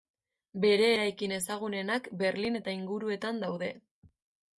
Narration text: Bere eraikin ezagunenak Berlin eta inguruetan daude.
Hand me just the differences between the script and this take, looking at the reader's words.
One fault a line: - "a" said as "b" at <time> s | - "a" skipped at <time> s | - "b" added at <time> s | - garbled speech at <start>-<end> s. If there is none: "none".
none